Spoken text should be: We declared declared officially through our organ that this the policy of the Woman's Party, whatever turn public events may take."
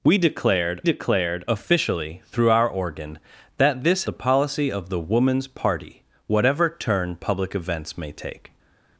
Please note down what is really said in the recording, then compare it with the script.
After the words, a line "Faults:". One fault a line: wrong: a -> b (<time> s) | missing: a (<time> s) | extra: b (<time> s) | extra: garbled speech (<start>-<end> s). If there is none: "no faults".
We declared declared officially through our organ that this the policy of the Woman's Party, whatever turn public events may take."
Faults:
no faults